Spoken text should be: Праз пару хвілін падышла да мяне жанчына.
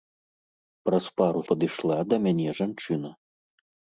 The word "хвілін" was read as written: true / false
false